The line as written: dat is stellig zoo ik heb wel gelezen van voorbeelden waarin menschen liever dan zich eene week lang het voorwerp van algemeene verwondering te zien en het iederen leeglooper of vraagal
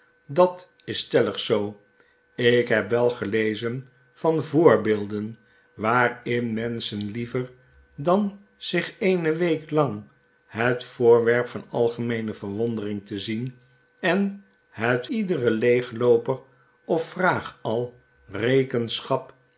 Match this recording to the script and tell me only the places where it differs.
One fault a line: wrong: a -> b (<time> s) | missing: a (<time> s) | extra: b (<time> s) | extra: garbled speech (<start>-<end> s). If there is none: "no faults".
no faults